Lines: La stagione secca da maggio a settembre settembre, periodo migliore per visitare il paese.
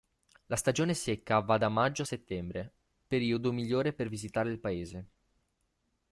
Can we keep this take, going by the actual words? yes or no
no